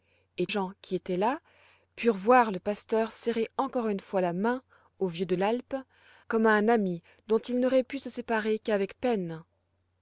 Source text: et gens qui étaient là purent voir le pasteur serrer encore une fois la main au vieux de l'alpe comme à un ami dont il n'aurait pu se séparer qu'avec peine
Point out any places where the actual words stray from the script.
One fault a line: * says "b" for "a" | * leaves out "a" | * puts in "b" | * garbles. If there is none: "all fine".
all fine